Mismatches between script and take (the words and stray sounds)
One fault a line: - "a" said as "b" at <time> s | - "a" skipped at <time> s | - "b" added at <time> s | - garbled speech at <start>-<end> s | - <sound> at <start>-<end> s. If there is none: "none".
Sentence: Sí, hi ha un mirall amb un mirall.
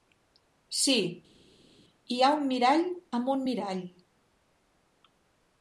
none